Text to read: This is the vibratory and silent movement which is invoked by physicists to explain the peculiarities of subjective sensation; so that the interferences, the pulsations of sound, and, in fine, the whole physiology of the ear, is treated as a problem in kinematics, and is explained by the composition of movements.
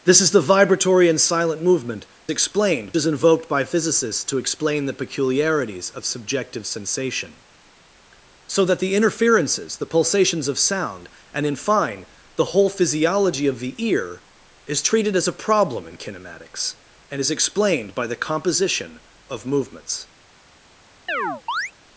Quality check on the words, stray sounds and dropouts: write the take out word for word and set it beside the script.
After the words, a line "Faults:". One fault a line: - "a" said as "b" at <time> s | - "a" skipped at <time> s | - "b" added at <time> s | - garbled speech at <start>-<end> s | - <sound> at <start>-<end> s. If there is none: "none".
This is the vibratory and silent movement explained is invoked by physicists to explain the peculiarities of subjective sensation; so that the interferences, the pulsations of sound, and, in fine, the whole physiology of the ear, is treated as a problem in kinematics, and is explained by the composition of movements.
Faults:
- "which" said as "explained" at 2.3 s
- chirp at 21.1-21.7 s